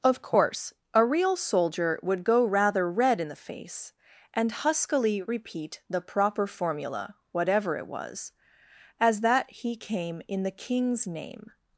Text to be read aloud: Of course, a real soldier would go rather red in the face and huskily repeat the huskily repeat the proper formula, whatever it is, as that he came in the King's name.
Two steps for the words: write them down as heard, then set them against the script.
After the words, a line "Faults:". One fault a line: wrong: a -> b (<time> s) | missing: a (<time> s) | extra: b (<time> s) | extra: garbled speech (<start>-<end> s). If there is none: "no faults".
Of course, a real soldier would go rather red in the face and huskily repeat the proper formula, whatever it was, as that he came in the King's name.
Faults:
missing: huskily repeat the (6.0 s)
wrong: is -> was (7.9 s)